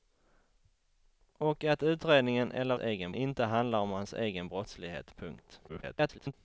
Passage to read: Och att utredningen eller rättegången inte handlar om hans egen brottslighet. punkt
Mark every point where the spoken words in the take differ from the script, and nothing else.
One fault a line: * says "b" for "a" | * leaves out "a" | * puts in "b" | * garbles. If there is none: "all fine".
* says "egen" for "rättegången"
* garbles